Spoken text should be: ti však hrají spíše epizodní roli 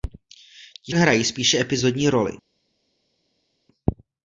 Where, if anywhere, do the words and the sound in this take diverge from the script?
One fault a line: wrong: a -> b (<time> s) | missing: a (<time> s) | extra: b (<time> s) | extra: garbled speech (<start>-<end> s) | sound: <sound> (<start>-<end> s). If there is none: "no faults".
missing: však (0.9 s)